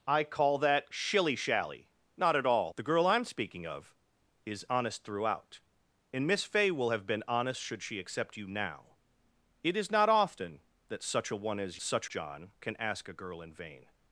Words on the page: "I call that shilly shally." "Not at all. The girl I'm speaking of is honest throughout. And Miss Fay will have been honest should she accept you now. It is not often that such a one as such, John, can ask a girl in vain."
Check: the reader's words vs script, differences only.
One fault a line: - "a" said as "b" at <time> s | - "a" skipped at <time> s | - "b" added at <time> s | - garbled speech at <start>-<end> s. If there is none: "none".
none